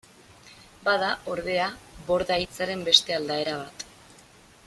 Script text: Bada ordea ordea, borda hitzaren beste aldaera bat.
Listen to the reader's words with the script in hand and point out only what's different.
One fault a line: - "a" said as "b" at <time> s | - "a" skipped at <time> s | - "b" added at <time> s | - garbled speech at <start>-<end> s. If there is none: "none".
- "ordea" skipped at 1.7 s